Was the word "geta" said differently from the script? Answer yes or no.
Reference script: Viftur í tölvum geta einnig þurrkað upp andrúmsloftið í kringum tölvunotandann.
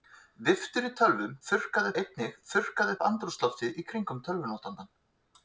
yes